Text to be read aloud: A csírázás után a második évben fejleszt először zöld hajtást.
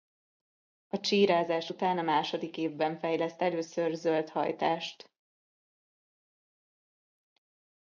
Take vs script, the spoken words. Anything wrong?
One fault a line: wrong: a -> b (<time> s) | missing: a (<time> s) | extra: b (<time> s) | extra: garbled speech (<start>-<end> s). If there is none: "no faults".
no faults